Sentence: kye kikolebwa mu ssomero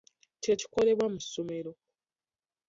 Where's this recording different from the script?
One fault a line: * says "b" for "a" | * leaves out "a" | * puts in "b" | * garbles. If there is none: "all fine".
all fine